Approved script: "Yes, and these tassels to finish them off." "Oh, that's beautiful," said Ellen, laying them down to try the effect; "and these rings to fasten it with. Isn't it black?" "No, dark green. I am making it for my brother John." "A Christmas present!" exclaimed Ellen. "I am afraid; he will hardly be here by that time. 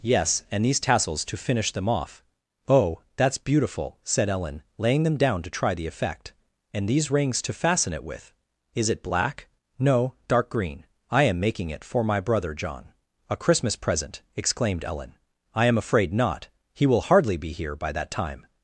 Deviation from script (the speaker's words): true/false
true